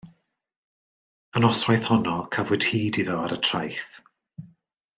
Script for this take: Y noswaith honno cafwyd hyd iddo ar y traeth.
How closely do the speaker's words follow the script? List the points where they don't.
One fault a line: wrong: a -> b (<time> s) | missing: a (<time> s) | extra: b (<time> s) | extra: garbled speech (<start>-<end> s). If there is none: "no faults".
no faults